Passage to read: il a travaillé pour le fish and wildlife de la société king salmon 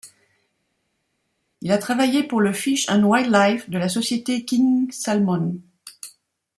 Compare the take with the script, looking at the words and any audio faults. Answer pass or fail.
pass